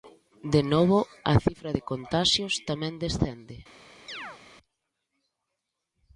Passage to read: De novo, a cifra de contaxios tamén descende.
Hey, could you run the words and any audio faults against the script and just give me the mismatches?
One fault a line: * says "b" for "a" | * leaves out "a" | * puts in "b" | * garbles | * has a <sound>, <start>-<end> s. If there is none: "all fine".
* has a chirp, 4.1-4.4 s